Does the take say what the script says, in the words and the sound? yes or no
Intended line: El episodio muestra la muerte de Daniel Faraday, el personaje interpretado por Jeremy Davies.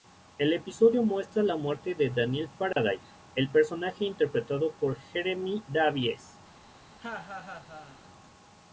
no